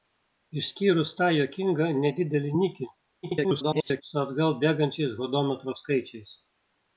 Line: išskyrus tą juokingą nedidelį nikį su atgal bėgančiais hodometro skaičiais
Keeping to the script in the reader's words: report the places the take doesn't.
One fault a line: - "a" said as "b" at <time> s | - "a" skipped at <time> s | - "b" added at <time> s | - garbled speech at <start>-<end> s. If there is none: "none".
- garbled speech at 3.2-4.0 s